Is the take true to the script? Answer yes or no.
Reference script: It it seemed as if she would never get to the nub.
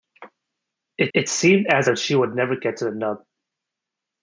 yes